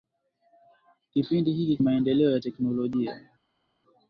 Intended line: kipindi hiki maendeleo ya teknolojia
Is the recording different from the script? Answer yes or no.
no